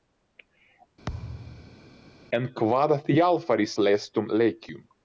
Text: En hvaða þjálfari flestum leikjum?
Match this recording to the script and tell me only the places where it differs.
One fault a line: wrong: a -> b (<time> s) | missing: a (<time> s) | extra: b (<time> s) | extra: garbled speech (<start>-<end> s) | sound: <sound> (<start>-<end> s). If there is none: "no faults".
sound: thud (1.1-1.9 s)